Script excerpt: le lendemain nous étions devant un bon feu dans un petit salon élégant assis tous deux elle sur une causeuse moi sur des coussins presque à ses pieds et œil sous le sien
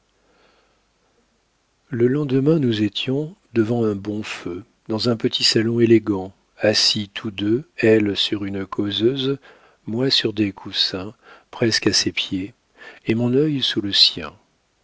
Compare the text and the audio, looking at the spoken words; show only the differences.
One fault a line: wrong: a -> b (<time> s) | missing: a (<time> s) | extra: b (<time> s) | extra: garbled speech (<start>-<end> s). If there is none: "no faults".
extra: mon (13.1 s)